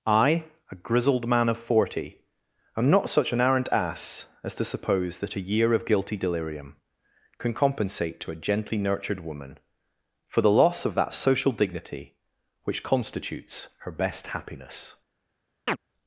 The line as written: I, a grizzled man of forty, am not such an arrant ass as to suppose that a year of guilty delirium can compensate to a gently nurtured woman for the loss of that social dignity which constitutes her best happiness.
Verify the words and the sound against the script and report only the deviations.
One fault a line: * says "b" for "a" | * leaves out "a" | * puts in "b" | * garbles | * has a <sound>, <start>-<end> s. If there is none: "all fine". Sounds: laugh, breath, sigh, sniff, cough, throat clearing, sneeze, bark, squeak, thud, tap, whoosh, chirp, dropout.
* has a chirp, 15.7-15.8 s